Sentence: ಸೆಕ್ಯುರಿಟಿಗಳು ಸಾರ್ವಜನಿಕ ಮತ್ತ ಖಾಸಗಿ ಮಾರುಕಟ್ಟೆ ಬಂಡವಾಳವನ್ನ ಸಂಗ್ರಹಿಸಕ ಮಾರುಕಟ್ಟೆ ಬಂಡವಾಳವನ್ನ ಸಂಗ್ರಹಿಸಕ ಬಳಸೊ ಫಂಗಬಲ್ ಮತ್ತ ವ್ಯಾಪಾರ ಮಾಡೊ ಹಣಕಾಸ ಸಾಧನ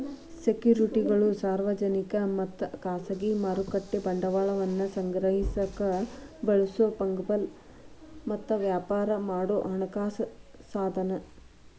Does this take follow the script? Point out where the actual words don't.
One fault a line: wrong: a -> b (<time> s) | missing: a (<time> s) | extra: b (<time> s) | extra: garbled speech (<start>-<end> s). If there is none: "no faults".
missing: ಮಾರುಕಟ್ಟೆ ಬಂಡವಾಳವನ್ನ ಸಂಗ್ರಹಿಸಕ (5.8 s)